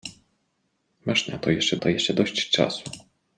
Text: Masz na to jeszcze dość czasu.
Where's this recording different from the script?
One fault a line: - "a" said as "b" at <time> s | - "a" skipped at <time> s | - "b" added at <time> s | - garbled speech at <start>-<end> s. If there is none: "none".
- "to jeszcze" added at 1.8 s